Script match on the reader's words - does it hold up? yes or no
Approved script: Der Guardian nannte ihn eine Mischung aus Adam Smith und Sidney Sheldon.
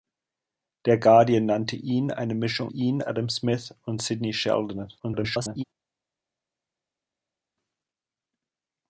no